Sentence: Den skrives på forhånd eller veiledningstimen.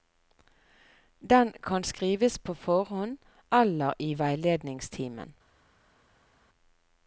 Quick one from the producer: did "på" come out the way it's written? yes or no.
yes